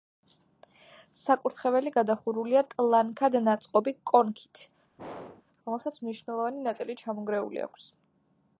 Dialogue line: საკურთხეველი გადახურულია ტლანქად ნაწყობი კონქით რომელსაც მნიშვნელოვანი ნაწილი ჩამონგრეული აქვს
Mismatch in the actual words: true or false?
false